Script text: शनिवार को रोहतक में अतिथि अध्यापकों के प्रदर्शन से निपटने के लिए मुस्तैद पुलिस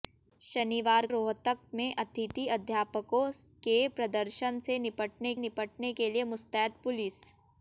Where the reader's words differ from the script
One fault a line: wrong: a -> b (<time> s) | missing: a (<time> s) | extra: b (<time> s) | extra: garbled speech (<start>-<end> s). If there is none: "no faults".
missing: को (1.1 s)
extra: निपटने (5.4 s)